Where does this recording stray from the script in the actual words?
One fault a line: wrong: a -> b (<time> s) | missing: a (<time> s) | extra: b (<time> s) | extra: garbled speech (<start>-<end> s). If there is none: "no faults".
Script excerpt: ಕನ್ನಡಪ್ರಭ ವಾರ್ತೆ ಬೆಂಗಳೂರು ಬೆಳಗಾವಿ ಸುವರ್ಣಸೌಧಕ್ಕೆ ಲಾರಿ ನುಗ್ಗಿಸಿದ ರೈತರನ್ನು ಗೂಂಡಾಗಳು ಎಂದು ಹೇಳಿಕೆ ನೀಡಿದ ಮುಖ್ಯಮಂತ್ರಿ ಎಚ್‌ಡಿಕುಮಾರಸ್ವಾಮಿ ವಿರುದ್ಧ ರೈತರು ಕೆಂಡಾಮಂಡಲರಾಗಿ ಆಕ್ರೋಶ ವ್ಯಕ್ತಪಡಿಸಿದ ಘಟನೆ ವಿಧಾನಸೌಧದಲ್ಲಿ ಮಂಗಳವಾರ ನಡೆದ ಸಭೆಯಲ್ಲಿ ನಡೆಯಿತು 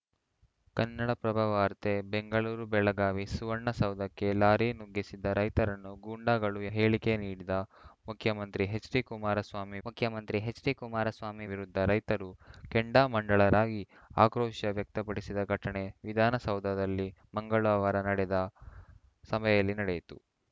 missing: ಎಂದು (6.6 s)
extra: ಮುಖ್ಯಮಂತ್ರಿ ಎಚ್‌ಡಿಕುಮಾರಸ್ವಾಮಿ (9.8 s)